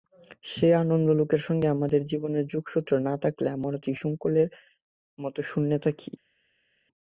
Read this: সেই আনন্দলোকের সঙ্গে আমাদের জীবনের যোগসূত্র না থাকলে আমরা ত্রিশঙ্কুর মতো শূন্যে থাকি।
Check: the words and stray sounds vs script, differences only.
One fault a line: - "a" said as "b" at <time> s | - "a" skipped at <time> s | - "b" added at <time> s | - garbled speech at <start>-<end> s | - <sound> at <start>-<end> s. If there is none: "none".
none